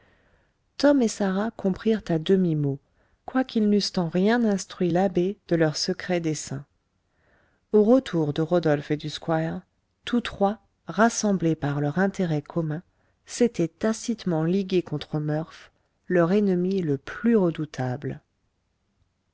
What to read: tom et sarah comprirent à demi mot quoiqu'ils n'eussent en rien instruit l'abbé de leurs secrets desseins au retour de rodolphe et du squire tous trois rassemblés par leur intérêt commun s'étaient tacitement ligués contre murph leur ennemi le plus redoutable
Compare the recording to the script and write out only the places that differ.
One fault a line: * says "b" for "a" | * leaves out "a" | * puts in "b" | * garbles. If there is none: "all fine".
all fine